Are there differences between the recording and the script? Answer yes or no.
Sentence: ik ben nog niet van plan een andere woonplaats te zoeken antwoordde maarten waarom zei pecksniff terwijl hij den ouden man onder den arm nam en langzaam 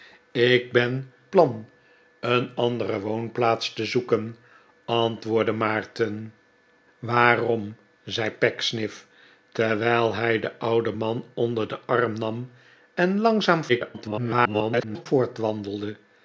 yes